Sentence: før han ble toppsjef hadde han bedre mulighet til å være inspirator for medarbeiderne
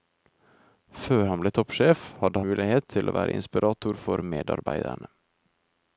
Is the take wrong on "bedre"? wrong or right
wrong